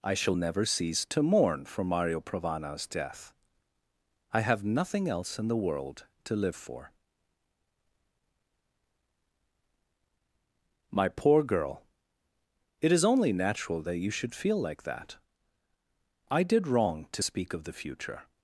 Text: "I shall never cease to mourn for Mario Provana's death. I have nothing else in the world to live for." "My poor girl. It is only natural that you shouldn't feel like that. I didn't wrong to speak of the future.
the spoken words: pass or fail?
fail